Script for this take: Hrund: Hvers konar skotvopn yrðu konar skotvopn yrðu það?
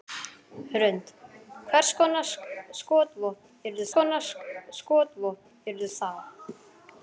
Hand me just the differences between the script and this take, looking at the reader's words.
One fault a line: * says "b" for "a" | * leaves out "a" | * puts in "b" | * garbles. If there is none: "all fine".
all fine